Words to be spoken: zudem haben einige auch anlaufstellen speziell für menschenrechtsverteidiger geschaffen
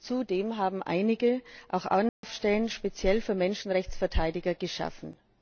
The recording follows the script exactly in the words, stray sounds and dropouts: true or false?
false